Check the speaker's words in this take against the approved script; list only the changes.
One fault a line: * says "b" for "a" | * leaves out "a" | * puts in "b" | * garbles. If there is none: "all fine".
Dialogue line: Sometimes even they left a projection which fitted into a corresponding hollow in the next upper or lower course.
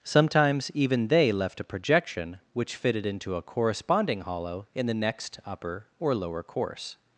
all fine